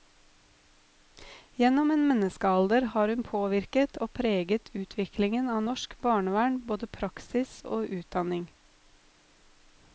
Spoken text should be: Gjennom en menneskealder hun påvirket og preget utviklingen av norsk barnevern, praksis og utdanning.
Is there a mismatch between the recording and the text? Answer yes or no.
yes